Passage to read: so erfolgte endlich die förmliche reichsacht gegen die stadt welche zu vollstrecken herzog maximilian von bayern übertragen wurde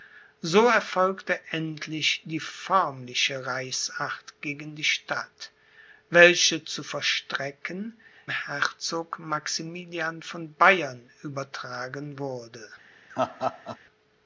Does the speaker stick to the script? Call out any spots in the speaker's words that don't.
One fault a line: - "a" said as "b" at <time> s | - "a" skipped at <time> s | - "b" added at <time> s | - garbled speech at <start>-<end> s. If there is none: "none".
none